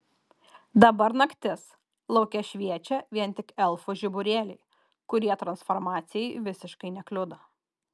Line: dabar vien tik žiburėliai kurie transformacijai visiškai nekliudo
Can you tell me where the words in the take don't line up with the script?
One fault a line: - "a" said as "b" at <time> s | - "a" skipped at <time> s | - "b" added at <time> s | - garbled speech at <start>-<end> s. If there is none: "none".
- "naktis lauke šviečia" added at 1.2 s
- "elfų" added at 3.7 s